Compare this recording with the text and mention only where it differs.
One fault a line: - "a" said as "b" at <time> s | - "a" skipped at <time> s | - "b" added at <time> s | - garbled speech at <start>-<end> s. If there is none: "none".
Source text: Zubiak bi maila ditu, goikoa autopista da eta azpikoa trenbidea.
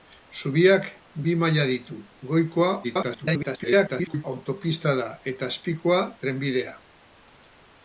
- garbled speech at 2.8-4.2 s